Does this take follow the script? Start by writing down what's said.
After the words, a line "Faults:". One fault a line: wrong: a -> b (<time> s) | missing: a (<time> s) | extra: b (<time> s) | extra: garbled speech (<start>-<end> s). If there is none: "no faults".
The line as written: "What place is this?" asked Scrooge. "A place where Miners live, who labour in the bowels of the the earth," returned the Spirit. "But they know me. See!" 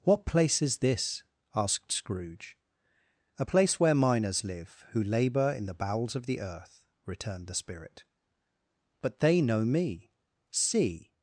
"What place is this?" asked Scrooge. "A place where Miners live, who labour in the bowels of the earth," returned the Spirit. "But they know me. See!"
Faults:
missing: the (6.4 s)